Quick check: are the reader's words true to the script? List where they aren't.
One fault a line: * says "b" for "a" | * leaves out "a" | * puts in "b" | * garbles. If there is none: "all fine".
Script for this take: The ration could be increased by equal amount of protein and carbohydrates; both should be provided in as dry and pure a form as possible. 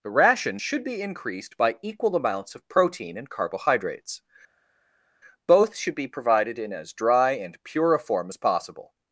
* says "should" for "could"
* says "amounts" for "amount"